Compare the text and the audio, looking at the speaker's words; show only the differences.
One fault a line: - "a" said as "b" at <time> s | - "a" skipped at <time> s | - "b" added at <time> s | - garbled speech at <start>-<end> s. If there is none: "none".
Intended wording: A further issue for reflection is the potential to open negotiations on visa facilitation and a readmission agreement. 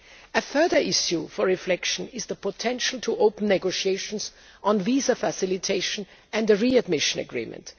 none